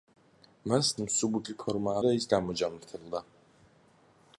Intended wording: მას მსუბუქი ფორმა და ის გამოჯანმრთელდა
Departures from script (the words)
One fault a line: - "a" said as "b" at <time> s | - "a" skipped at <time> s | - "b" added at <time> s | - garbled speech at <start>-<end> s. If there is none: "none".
none